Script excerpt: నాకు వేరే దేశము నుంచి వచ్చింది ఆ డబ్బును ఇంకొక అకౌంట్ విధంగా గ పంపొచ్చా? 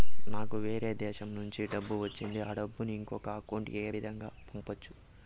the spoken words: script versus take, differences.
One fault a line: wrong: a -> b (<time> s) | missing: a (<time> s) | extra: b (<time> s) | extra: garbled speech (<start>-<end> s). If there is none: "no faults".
extra: డబ్బు (1.7 s)
extra: ఏ (3.8 s)